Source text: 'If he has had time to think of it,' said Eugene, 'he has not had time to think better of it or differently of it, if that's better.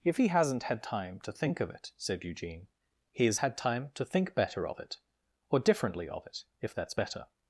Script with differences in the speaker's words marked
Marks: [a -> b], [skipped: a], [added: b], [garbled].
'If he [has -> hasn't] had time to think of it,' said Eugene, 'he has [skipped: not] had time to think better of it or differently of it, if that's better.